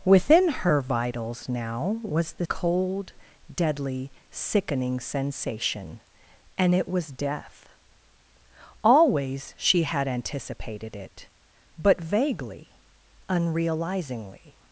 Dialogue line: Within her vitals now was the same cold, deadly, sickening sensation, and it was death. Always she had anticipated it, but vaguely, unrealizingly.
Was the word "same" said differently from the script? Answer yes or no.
yes